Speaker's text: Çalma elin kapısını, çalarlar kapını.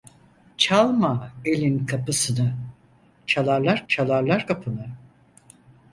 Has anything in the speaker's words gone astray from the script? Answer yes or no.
yes